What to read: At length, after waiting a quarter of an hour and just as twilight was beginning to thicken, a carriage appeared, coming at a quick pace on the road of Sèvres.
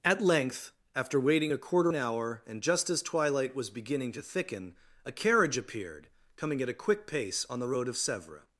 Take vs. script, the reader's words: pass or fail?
fail